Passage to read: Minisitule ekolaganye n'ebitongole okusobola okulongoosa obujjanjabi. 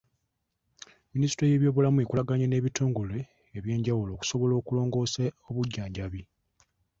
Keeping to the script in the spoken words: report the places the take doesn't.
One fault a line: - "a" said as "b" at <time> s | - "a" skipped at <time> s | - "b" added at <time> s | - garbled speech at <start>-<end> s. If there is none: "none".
- "y'ebyobulamu" added at 1.5 s
- "eby'enjawulo" added at 3.6 s